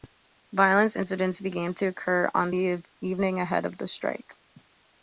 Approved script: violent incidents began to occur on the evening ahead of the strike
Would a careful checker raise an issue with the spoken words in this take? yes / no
no